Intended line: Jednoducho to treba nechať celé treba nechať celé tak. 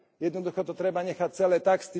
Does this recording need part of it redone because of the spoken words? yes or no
yes